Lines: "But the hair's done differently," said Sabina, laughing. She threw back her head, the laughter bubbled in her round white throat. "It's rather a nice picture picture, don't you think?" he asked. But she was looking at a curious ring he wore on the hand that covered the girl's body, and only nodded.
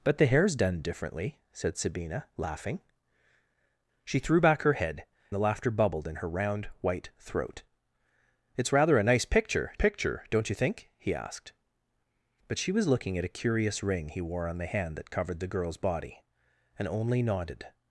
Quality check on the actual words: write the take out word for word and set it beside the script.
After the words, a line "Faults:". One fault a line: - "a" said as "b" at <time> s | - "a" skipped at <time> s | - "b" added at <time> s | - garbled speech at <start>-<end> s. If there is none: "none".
"But the hair's done differently," said Sabina, laughing. She threw back her head, the laughter bubbled in her round white throat. "It's rather a nice picture picture, don't you think?" he asked. But she was looking at a curious ring he wore on the hand that covered the girl's body, and only nodded.
Faults:
none